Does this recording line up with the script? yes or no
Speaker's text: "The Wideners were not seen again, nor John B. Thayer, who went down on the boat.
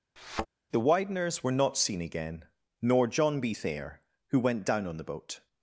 yes